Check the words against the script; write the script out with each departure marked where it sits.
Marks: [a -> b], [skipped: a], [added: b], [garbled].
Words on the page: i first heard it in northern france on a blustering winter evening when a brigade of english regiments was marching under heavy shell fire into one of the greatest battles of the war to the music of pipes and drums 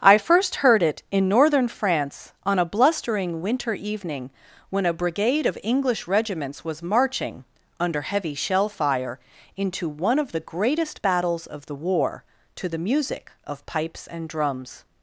i first heard it in northern france on a blustering winter evening when a brigade of english regiments was marching under heavy shell fire into one of the greatest battles of the war to the music of pipes and drums